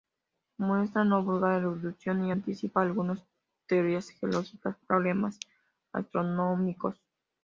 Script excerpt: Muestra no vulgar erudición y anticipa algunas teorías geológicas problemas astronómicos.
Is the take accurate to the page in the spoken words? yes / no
yes